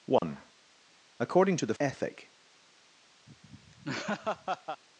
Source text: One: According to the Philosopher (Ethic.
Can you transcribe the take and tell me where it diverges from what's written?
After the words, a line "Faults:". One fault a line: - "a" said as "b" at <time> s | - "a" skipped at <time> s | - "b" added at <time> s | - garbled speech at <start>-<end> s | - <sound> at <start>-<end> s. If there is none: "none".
One: According to the (Ethic.
Faults:
- dropout at 0.2-0.2 s
- "Philosopher" skipped at 1.7 s
- laugh at 3.3-4.8 s